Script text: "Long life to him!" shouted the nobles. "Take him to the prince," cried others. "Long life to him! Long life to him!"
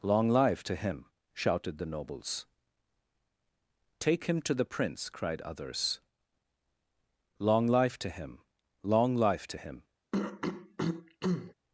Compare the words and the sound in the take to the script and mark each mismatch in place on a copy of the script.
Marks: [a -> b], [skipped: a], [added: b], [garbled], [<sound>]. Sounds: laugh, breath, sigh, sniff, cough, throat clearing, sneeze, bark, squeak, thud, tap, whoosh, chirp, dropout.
"Long life to him!" shouted the nobles. "Take him to the prince," cried others. "Long life to him! Long life to him!" [throat clearing]